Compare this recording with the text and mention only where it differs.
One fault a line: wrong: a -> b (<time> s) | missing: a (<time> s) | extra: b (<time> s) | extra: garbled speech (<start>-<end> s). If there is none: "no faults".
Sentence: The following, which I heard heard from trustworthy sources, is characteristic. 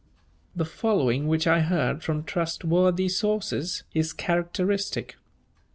missing: heard (2.0 s)